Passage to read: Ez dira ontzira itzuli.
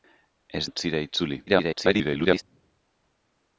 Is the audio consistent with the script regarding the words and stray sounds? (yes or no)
no